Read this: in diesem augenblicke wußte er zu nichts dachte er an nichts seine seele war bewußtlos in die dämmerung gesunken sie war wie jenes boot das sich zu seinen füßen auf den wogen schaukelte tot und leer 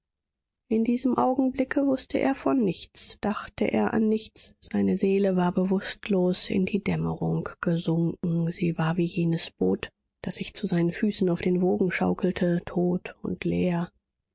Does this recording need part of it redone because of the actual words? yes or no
yes